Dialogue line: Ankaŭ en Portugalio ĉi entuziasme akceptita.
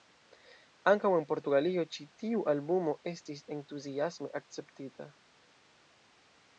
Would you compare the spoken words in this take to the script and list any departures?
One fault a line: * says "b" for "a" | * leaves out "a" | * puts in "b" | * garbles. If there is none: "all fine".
* puts in "tiu albumo estis"